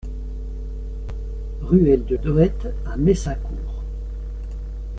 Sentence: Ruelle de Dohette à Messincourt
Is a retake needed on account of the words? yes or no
no